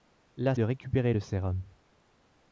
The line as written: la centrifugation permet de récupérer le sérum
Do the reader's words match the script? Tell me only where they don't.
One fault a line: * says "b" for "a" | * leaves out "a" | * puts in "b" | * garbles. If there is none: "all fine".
* leaves out "centrifugation permet"